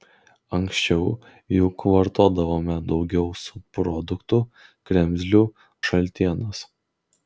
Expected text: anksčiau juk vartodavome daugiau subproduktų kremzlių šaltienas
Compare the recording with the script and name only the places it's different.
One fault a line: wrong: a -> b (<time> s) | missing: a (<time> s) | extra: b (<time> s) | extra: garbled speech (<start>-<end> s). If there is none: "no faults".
no faults